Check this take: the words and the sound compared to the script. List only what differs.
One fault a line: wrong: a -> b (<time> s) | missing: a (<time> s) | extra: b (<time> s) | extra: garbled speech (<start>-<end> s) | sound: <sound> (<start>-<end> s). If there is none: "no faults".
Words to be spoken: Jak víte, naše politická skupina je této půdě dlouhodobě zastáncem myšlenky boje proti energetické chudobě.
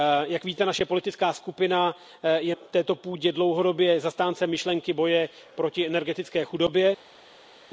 no faults